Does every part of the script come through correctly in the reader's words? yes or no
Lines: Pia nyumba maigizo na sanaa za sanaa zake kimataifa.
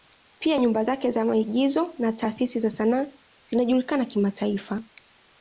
no